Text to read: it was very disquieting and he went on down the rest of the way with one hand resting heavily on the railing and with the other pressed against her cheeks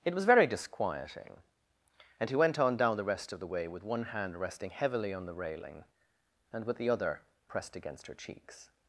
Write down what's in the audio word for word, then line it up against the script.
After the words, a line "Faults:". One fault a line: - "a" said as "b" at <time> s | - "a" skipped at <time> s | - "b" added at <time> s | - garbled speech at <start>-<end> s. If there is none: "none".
it was very disquieting and he went on down the rest of the way with one hand resting heavily on the railing and with the other pressed against her cheeks
Faults:
none